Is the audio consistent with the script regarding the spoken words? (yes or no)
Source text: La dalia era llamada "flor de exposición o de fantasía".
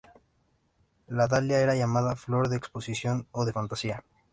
yes